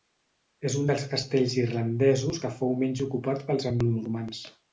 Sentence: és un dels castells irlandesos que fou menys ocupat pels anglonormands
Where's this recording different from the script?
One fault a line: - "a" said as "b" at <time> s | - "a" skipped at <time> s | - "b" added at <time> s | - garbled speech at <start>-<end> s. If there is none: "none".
none